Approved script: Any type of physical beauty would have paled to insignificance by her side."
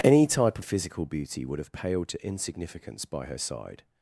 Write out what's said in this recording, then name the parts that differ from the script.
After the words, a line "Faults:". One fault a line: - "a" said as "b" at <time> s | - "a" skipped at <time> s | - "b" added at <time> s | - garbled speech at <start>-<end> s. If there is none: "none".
Any type of physical beauty would have paled to insignificance by her side."
Faults:
none